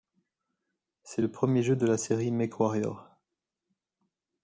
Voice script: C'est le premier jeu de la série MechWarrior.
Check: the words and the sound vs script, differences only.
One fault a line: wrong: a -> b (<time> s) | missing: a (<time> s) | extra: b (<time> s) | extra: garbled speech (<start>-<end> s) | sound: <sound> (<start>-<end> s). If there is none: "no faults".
no faults